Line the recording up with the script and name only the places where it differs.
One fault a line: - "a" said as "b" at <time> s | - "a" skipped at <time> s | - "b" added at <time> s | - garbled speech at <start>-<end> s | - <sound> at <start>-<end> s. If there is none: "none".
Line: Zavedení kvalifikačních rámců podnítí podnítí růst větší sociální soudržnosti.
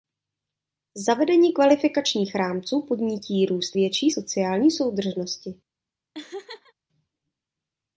- "podnítí" skipped at 3.5 s
- laugh at 6.1-6.7 s